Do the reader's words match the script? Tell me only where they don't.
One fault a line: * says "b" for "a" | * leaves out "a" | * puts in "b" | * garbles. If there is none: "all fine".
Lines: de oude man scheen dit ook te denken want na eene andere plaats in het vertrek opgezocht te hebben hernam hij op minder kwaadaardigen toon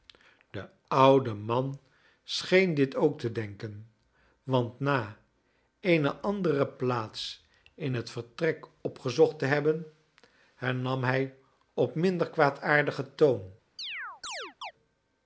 all fine